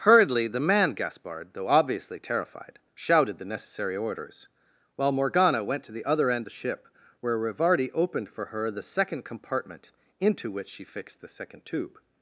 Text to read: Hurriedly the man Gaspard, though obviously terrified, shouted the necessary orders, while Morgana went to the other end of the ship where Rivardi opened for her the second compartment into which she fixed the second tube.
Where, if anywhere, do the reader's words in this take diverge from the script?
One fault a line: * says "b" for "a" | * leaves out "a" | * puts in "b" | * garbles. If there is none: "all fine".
* leaves out "of"